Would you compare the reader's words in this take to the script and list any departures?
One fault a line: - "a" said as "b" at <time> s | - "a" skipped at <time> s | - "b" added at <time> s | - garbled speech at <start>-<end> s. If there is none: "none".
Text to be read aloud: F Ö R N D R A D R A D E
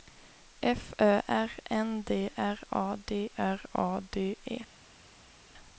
none